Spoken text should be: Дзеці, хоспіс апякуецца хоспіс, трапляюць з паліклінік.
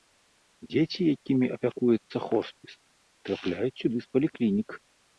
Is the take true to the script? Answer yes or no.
no